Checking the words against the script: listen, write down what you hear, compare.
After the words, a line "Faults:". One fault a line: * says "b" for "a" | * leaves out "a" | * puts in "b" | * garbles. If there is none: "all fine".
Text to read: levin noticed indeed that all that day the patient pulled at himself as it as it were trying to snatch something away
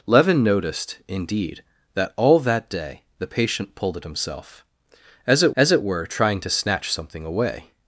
levin noticed indeed that all that day the patient pulled at himself as it as it were trying to snatch something away
Faults:
all fine